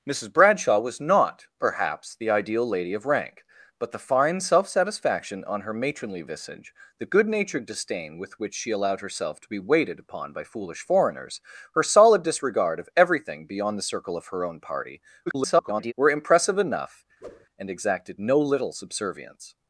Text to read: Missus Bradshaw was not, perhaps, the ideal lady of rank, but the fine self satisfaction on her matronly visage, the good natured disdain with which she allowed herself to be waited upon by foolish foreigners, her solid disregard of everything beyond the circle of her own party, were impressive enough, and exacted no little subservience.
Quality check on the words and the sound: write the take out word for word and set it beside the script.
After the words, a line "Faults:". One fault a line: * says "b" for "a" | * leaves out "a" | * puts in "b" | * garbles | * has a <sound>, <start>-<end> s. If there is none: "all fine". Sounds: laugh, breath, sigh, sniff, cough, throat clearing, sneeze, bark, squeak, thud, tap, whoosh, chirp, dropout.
Missus Bradshaw was not, perhaps, the ideal lady of rank, but the fine self satisfaction on her matronly visage, the good natured disdain with which she allowed herself to be waited upon by foolish foreigners, her solid disregard of everything beyond the circle of her own party, [garbled] were impressive enough, and exacted no little subservience.
Faults:
* garbles
* has a whoosh, 17.2-17.5 s